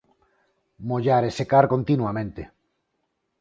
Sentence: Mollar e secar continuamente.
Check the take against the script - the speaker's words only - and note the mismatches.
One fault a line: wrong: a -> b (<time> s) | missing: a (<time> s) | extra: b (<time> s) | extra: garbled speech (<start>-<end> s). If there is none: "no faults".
no faults